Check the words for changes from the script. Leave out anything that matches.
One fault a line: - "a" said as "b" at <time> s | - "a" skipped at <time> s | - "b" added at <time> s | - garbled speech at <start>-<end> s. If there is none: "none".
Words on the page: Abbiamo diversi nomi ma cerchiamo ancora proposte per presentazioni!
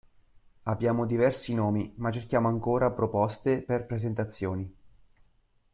none